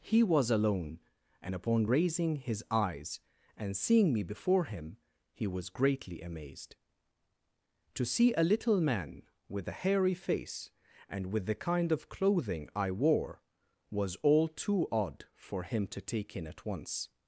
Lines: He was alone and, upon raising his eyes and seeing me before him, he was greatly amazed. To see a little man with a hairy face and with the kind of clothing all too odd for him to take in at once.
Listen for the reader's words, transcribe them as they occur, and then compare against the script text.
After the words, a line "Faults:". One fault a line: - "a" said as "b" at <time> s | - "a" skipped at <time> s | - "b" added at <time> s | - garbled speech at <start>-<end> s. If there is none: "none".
He was alone and, upon raising his eyes and seeing me before him, he was greatly amazed. To see a little man with a hairy face and with the kind of clothing I wore, was all too odd for him to take in at once.
Faults:
- "I wore was" added at 12.7 s